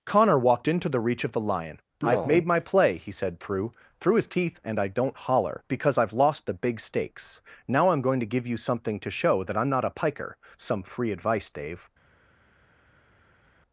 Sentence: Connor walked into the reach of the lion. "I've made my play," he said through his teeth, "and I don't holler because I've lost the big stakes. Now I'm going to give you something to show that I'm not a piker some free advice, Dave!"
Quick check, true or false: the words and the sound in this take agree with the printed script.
false